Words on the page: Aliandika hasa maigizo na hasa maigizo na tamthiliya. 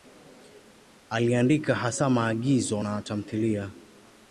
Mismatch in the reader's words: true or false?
true